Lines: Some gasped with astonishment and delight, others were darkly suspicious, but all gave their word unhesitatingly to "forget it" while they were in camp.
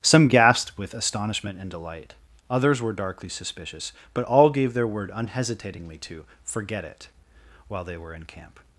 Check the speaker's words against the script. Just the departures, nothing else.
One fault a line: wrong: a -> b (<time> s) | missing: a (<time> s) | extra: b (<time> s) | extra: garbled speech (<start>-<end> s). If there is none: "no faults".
no faults